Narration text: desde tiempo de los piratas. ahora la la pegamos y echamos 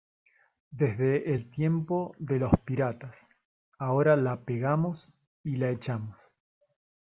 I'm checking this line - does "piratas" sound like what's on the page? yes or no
yes